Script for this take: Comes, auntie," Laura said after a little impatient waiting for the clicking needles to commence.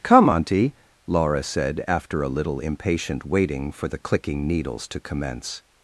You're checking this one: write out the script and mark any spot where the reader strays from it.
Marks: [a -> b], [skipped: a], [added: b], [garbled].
[Comes, -> Come] auntie," Laura said after a little impatient waiting for the clicking needles to commence.